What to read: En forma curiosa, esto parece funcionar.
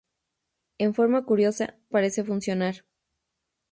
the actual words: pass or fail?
fail